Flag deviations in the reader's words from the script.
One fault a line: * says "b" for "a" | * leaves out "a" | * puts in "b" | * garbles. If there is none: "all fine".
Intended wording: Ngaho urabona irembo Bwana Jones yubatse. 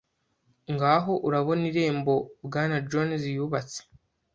all fine